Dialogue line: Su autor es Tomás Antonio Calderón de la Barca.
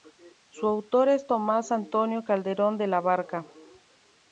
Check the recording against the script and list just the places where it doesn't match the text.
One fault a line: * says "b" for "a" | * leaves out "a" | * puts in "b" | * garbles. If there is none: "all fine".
all fine